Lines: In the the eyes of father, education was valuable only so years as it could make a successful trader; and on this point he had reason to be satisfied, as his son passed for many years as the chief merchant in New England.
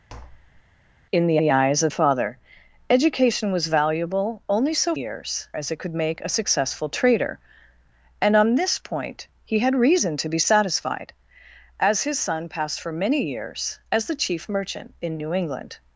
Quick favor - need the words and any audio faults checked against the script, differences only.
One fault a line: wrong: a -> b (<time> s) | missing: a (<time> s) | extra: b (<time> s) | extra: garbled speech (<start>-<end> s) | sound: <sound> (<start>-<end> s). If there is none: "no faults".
sound: tap (0.1-0.6 s)